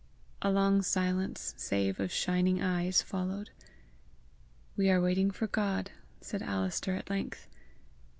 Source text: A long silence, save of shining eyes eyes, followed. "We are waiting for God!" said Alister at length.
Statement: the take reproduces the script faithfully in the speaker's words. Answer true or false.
false